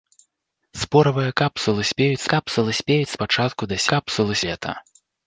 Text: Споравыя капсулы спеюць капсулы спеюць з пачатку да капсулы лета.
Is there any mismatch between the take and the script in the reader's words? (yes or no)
no